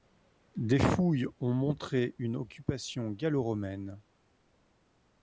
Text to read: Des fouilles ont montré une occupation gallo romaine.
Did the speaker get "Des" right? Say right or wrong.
right